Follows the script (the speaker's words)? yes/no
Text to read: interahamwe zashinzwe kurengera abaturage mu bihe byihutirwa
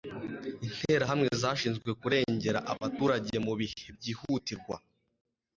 yes